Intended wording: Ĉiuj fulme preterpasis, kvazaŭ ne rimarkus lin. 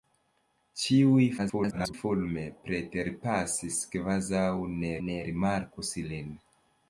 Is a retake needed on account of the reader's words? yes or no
yes